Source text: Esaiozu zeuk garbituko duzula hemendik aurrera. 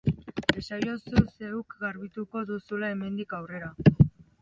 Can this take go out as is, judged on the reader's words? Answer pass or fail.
pass